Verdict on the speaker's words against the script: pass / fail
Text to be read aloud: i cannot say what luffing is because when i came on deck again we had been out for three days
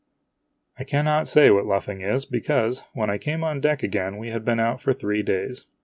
pass